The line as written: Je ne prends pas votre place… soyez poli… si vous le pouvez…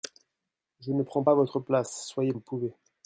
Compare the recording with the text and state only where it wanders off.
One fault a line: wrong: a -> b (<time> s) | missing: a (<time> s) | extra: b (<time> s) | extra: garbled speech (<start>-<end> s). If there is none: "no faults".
missing: poli si vous (2.3 s)